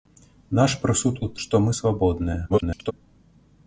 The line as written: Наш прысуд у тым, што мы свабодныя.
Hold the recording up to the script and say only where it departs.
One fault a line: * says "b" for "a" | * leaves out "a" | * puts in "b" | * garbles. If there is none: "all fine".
* leaves out "тым"
* garbles